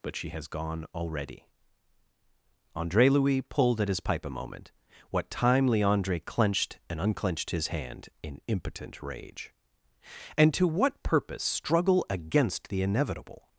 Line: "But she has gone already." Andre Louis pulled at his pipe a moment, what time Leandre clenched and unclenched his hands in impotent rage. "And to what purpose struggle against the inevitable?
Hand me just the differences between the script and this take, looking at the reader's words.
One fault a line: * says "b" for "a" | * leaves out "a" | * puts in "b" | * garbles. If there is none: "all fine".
* says "hand" for "hands"